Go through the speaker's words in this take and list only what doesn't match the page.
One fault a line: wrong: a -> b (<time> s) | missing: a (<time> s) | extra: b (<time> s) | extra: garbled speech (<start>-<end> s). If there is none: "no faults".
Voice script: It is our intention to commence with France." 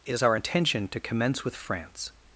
no faults